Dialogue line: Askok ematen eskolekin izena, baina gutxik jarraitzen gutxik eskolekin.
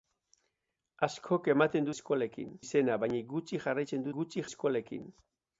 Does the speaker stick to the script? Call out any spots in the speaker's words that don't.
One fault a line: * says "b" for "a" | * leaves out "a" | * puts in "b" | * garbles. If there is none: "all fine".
all fine